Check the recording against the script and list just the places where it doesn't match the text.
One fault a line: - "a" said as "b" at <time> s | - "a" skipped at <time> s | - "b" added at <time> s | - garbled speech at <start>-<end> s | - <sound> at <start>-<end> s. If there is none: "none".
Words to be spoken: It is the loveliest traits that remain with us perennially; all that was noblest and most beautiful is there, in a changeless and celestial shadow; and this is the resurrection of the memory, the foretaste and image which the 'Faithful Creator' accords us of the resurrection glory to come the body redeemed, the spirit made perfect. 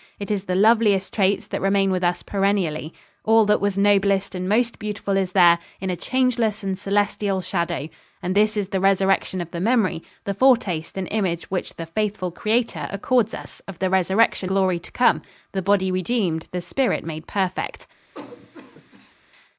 - cough at 18.1-19.2 s